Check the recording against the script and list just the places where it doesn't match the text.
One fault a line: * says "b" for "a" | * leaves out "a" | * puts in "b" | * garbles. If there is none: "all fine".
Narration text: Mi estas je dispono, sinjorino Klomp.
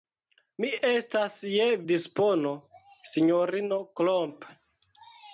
all fine